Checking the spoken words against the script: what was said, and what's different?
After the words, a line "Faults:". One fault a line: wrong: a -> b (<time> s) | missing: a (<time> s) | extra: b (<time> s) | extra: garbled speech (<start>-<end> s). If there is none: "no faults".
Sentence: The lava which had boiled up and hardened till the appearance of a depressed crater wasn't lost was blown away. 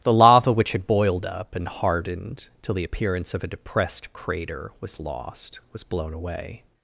The lava which had boiled up and hardened till the appearance of a depressed crater was lost was blown away.
Faults:
wrong: wasn't -> was (4.8 s)